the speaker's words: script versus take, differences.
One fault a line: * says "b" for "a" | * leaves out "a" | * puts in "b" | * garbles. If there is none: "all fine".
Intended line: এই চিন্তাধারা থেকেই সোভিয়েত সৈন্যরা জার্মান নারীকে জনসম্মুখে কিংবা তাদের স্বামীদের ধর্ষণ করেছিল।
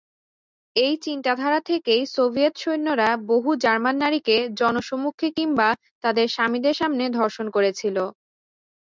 * puts in "বহু"
* puts in "সামনে"